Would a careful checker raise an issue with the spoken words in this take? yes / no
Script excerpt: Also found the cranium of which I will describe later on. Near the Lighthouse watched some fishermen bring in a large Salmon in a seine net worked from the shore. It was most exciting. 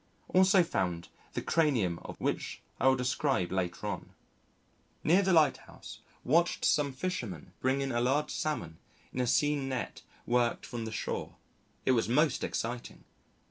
no